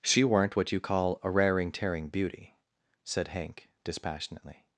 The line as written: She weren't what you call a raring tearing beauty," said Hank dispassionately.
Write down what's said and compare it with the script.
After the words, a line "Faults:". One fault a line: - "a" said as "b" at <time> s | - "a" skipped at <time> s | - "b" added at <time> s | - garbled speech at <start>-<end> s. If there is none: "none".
She weren't what you call a raring tearing beauty," said Hank dispassionately.
Faults:
none